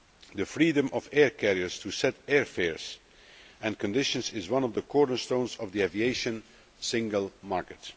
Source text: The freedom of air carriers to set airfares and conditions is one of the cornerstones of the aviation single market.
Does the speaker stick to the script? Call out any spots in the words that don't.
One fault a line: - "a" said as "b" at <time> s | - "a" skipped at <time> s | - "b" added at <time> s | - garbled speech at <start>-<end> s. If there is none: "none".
none